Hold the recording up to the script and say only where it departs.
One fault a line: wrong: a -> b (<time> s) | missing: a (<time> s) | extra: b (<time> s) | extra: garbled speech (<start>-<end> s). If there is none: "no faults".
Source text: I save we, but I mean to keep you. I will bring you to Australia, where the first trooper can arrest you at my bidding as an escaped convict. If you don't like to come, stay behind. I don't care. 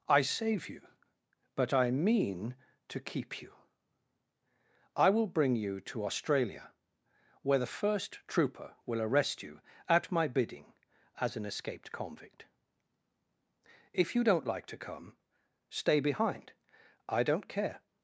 wrong: we -> you (0.7 s)
wrong: can -> will (8.9 s)